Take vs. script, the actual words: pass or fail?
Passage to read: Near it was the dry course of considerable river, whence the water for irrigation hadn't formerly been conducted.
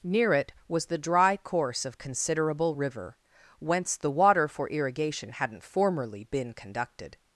pass